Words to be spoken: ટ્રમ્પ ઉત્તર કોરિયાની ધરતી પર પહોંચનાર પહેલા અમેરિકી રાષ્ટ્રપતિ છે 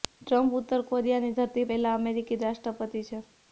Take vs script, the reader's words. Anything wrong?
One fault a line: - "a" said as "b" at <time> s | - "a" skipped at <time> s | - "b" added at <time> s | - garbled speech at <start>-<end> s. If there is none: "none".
- "પર પહોંચનાર" skipped at 1.6 s